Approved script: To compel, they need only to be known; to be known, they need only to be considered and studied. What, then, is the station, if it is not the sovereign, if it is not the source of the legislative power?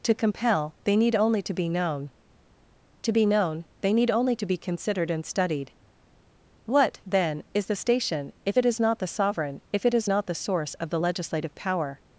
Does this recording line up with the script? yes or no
yes